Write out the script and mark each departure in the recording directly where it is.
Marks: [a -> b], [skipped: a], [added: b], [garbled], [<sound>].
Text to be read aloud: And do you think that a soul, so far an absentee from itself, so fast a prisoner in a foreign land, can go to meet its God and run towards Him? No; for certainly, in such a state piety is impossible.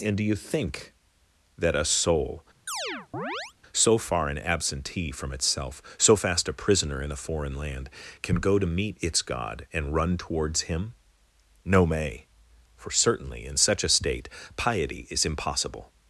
And do you think that a soul, [chirp] so far an absentee from itself, so fast a prisoner in a foreign land, can go to meet its God and run towards Him? No; [added: may] for certainly, in such a state piety is impossible.